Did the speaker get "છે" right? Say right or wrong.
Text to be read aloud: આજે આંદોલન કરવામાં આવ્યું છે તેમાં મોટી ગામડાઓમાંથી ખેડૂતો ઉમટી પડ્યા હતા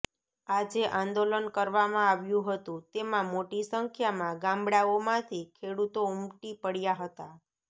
wrong